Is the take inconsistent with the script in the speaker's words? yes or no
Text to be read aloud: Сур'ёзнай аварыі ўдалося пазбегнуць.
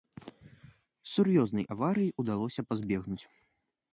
no